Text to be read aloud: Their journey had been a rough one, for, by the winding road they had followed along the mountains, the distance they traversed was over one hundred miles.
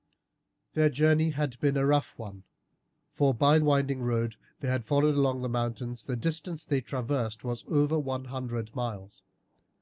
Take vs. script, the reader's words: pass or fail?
fail